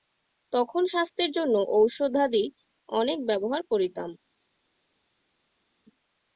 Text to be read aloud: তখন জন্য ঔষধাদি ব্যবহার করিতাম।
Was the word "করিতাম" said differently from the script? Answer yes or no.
no